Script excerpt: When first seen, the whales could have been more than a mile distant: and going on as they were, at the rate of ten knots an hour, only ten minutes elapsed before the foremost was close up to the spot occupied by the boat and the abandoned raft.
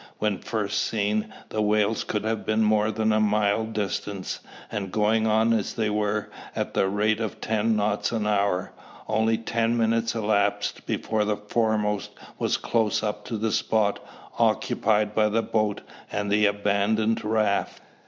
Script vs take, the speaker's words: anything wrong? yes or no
no